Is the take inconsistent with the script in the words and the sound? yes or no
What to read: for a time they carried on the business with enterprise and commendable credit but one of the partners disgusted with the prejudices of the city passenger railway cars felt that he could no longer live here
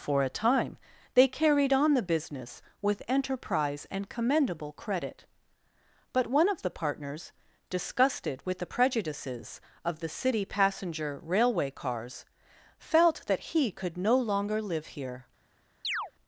yes